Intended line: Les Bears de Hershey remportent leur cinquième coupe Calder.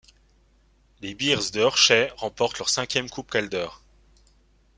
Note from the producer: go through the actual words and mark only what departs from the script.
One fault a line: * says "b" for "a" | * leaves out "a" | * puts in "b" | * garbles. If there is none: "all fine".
all fine